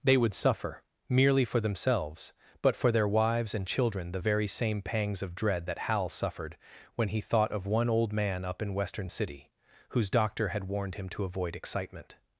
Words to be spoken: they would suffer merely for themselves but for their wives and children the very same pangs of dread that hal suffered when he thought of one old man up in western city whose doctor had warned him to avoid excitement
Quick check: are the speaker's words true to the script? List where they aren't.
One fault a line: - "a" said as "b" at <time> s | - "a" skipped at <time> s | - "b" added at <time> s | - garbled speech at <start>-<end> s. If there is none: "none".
none